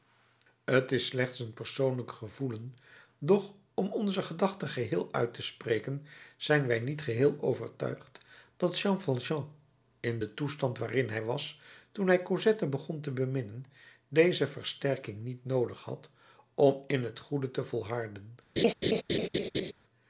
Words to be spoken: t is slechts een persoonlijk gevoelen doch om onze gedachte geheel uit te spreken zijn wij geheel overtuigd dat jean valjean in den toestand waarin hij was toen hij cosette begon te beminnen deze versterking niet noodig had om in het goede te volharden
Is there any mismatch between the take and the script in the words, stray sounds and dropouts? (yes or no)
yes